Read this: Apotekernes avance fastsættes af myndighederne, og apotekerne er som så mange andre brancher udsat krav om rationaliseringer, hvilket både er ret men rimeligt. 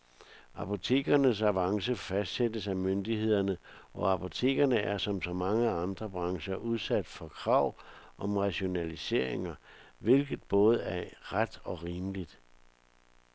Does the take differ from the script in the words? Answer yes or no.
yes